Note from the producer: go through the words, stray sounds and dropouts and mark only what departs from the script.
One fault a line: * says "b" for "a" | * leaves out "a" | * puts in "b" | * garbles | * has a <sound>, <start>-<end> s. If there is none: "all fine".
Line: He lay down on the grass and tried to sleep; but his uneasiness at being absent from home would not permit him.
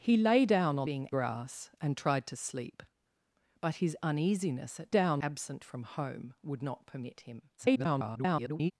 * says "being" for "the"
* says "down" for "being"
* garbles